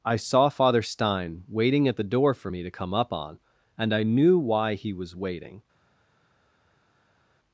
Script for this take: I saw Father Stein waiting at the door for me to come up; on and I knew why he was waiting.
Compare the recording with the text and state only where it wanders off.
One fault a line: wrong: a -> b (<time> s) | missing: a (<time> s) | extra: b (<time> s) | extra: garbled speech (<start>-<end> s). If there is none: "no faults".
no faults